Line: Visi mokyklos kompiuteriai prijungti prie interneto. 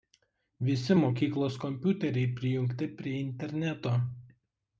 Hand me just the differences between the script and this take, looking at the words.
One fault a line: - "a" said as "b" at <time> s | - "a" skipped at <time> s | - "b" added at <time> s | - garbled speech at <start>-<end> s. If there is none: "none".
none